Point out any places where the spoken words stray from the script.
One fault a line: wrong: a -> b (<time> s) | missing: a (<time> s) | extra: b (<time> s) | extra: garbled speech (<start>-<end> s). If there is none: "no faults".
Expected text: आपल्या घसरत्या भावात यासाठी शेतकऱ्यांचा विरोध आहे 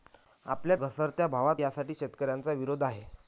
no faults